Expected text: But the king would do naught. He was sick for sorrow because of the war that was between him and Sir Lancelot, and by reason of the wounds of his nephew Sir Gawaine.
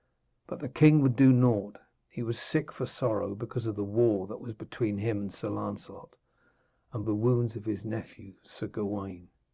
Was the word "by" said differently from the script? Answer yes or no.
yes